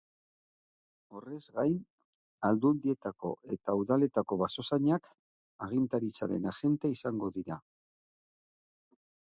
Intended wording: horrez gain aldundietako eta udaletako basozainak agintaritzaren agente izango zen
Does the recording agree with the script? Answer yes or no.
no